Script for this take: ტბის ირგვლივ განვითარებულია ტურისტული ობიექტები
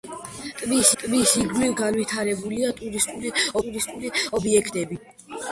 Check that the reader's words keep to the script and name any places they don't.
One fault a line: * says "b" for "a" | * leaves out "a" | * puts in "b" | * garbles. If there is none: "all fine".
* puts in "ტბის"
* puts in "ტურისტული"